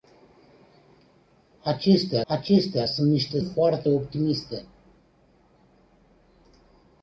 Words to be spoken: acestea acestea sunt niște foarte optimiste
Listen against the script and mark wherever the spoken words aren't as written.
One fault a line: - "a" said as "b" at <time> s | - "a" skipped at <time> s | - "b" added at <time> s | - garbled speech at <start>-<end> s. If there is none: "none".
none